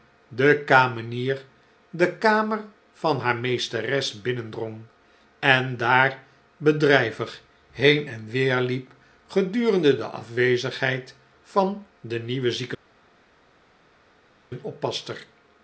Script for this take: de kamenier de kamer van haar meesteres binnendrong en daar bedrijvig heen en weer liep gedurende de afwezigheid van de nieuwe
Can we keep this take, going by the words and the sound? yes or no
yes